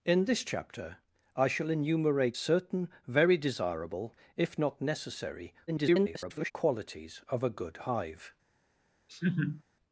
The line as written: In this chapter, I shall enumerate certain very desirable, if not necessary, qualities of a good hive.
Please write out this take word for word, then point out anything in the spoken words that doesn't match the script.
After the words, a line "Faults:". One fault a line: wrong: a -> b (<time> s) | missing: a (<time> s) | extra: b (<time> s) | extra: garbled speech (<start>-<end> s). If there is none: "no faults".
In this chapter, I shall enumerate certain very desirable, if not necessary, [garbled] qualities of a good hive.
Faults:
extra: garbled speech (5.7-6.5 s)